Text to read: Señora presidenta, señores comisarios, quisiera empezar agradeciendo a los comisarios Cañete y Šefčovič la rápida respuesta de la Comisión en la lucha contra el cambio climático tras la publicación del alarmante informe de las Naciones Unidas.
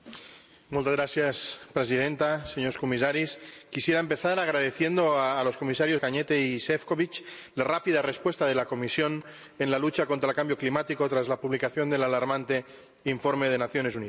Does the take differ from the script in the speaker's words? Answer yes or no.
no